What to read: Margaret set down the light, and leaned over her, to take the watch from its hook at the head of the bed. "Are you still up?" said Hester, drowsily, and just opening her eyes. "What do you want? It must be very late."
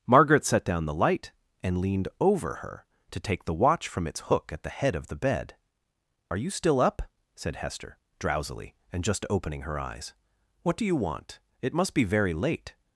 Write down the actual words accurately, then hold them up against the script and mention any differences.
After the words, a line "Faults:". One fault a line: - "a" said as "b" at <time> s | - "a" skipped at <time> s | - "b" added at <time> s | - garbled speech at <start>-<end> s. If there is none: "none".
Margaret set down the light, and leaned over her, to take the watch from its hook at the head of the bed. "Are you still up?" said Hester, drowsily, and just opening her eyes. "What do you want? It must be very late."
Faults:
none